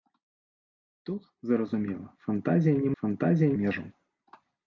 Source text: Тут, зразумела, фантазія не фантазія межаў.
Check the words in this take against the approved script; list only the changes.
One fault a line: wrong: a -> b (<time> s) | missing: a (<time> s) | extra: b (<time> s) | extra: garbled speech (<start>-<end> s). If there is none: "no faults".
no faults